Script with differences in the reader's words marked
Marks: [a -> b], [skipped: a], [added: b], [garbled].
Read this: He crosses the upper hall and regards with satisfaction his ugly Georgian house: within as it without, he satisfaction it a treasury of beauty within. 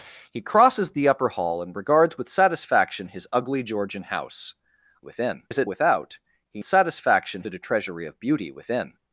He crosses the upper hall and regards with satisfaction his ugly Georgian house: within as it without, he satisfaction it a treasury of beauty within.